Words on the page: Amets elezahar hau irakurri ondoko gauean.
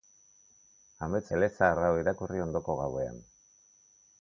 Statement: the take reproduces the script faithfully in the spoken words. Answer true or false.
true